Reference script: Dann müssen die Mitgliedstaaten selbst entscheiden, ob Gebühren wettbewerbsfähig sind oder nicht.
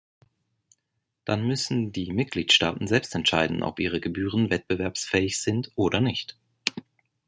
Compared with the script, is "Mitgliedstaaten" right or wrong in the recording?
right